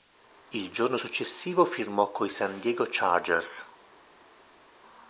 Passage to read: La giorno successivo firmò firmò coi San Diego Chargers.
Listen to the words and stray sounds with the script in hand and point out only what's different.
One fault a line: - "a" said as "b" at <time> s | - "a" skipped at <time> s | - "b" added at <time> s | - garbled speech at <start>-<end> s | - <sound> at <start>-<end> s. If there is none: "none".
- "La" said as "Il" at 0.5 s
- "firmò" skipped at 2.1 s